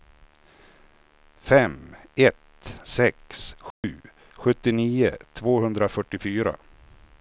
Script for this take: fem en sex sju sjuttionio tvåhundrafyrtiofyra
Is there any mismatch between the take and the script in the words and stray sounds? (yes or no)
yes